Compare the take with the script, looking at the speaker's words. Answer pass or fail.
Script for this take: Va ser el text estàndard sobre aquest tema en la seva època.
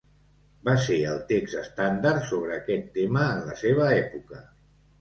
pass